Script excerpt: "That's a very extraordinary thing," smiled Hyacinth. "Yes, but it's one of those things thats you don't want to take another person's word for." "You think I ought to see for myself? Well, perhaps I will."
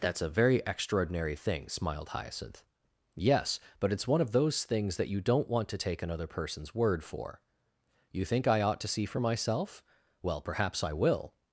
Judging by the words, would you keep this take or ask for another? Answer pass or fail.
fail